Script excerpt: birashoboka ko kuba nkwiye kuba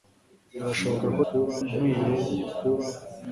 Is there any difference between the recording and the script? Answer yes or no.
no